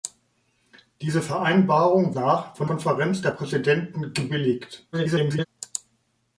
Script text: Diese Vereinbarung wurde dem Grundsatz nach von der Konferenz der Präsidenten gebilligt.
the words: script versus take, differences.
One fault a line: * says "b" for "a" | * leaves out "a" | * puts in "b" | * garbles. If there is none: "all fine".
* leaves out "wurde dem Grundsatz"
* leaves out "der"
* garbles